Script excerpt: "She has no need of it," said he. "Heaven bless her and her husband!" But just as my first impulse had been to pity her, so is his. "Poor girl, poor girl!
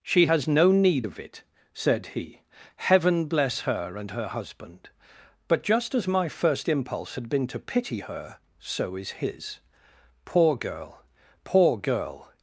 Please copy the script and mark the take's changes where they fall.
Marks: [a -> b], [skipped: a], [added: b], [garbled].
"She has no need of it," said he. "Heaven bless her and her husband!" But just as my first impulse had been to pity her, so is his. "Poor girl, poor girl!